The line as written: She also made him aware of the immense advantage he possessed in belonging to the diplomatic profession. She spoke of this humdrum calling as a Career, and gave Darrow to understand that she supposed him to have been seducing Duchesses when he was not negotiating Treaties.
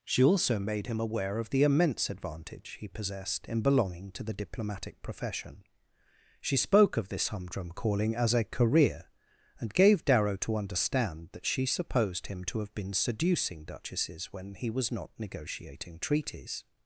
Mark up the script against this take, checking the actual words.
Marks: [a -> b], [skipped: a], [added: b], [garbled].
She also made him aware of the immense advantage he possessed in belonging to the diplomatic profession. She spoke of this humdrum calling as a Career, and gave Darrow to understand that she supposed him to have been seducing Duchesses when he was not negotiating Treaties.